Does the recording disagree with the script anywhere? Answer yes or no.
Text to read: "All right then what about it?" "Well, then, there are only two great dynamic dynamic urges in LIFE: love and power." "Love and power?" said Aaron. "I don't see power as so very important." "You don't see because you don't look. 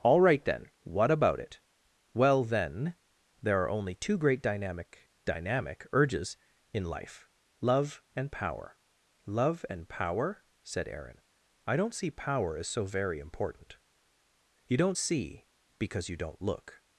no